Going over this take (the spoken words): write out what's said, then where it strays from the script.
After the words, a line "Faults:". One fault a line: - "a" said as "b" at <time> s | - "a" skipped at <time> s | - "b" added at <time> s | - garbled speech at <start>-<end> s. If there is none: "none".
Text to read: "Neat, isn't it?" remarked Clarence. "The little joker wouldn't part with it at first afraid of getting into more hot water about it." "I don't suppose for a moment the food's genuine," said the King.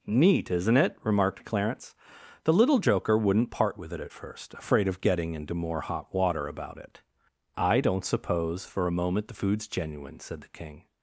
"Neat, isn't it?" remarked Clarence. "The little joker wouldn't part with it at first afraid of getting into more hot water about it." "I don't suppose for a moment the food's genuine," said the King.
Faults:
none